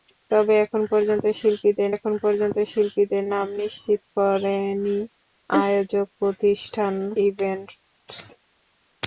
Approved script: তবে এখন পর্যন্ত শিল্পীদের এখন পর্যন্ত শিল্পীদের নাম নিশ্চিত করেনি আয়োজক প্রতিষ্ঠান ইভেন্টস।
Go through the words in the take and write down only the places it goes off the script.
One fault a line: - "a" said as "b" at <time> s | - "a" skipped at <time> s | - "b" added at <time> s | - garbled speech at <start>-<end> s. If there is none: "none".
none